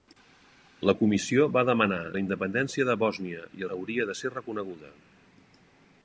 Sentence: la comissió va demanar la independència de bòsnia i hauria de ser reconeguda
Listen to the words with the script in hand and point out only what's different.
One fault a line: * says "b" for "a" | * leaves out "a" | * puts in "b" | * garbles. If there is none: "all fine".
all fine